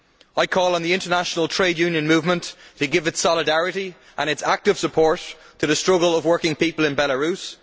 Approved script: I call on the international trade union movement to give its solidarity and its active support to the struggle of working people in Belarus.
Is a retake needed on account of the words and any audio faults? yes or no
no